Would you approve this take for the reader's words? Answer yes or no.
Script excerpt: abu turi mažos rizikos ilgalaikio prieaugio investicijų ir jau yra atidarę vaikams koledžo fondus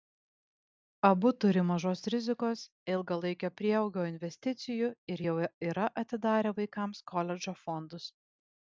yes